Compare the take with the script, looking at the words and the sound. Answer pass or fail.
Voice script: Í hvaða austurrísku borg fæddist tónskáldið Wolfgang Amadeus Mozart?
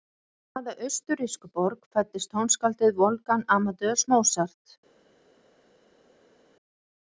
pass